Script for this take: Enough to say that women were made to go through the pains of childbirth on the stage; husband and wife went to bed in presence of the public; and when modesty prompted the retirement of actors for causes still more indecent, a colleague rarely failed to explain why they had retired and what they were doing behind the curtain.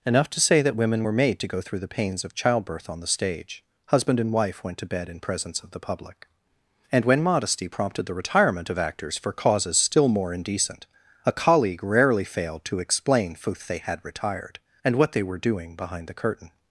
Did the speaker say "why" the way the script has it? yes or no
no